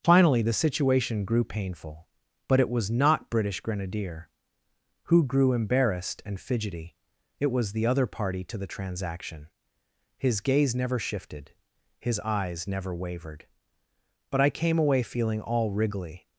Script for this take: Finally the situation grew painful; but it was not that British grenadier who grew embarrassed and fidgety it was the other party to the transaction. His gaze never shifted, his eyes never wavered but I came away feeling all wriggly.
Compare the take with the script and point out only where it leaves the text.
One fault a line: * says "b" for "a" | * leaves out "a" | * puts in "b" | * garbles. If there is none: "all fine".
* leaves out "that"